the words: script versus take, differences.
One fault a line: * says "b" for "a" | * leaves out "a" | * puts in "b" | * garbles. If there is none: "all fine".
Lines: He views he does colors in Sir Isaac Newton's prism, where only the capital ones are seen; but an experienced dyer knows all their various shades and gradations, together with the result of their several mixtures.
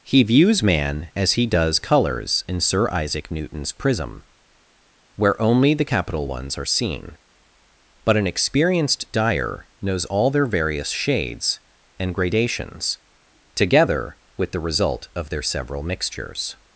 * puts in "man as"